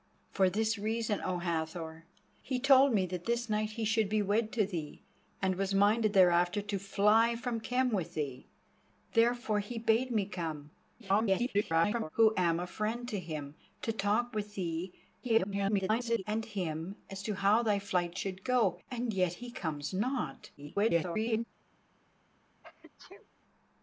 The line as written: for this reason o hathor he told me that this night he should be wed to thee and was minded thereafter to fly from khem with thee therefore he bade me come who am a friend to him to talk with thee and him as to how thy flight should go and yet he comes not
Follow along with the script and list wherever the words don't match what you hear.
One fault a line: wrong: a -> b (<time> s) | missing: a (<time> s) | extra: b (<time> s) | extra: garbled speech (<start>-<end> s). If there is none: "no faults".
extra: garbled speech (11.0-12.1 s)
extra: garbled speech (15.2-16.2 s)
extra: garbled speech (20.6-21.4 s)